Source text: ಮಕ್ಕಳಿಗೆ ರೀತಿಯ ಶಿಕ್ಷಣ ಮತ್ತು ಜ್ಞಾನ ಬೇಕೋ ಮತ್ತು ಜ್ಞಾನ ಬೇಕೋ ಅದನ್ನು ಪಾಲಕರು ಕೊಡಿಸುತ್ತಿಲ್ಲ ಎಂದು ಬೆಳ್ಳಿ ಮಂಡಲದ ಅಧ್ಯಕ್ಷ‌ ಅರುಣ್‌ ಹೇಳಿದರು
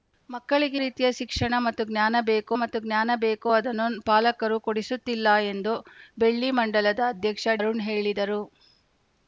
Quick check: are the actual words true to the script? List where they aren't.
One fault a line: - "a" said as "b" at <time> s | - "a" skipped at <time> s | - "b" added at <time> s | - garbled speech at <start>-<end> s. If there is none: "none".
none